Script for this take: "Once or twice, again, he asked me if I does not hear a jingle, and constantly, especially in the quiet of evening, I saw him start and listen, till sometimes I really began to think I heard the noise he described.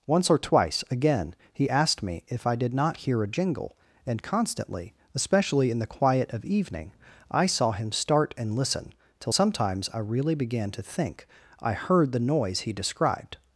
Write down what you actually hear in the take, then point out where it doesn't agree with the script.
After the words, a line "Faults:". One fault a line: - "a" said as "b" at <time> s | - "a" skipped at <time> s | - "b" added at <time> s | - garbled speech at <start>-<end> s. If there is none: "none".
"Once or twice, again, he asked me if I did not hear a jingle, and constantly, especially in the quiet of evening, I saw him start and listen, till sometimes I really began to think I heard the noise he described.
Faults:
- "does" said as "did" at 2.5 s